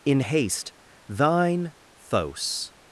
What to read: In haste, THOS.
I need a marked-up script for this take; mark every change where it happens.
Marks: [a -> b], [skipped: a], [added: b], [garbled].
In haste, [added: thine] THOS.